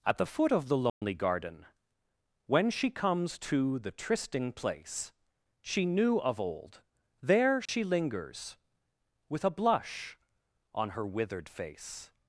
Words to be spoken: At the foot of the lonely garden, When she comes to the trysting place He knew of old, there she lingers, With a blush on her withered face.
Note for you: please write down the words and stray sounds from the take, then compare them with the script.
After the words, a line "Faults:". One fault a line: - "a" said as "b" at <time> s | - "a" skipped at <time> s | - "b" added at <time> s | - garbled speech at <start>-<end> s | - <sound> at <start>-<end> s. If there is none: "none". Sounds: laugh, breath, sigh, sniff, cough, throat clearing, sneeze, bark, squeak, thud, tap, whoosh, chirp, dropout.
At the foot of the lonely garden, When she comes to the trysting place She knew of old, there she lingers, With a blush on her withered face.
Faults:
- dropout at 0.9-1.0 s
- "He" said as "She" at 5.6 s
- dropout at 7.7-7.7 s